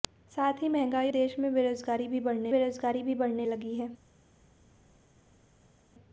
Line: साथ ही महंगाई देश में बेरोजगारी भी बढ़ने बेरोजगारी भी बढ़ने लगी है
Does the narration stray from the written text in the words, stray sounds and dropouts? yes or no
no